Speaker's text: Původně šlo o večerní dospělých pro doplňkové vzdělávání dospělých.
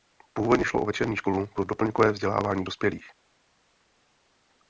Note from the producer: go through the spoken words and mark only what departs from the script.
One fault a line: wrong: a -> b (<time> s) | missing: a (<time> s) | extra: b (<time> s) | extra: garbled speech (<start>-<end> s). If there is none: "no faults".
wrong: dospělých -> školu (1.1 s)